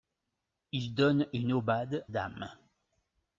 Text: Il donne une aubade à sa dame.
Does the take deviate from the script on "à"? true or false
true